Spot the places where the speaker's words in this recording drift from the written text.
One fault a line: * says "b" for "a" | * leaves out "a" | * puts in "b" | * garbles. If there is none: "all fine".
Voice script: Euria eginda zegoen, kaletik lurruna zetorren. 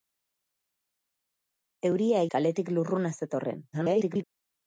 * leaves out "eginda zegoen"
* garbles